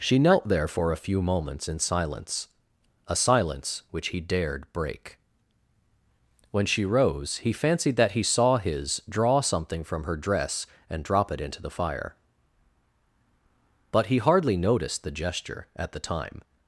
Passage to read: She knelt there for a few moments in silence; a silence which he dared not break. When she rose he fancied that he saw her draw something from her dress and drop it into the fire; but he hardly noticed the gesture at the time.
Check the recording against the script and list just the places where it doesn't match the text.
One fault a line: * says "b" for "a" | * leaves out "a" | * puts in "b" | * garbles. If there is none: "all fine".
* leaves out "not"
* says "his" for "her"